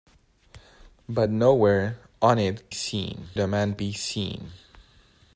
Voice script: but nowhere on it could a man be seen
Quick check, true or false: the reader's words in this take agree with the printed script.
false